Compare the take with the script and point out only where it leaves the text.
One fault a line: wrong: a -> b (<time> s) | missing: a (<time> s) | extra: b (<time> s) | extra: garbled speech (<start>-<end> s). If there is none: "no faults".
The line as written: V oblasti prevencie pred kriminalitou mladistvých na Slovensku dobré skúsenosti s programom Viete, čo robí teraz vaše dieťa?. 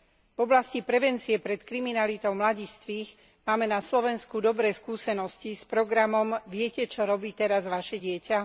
extra: máme (3.4 s)